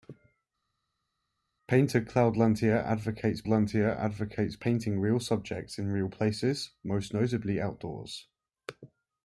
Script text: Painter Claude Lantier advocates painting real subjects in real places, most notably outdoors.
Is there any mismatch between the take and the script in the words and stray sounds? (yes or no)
yes